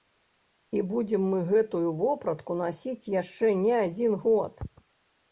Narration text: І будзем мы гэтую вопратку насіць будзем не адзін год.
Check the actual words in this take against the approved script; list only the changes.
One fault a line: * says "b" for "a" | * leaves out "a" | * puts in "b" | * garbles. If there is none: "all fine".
* says "яшчэ" for "будзем"